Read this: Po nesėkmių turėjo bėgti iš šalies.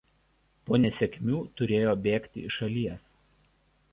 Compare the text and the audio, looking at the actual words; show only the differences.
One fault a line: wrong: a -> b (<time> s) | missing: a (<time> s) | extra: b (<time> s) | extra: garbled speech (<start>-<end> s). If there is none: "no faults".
no faults